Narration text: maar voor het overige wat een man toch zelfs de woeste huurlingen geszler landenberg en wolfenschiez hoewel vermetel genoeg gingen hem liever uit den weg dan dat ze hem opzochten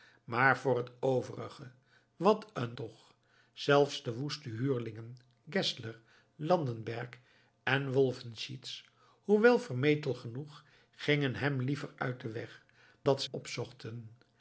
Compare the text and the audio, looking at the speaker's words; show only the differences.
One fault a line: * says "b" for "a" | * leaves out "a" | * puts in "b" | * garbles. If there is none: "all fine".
* leaves out "man"
* leaves out "dan"
* leaves out "hem"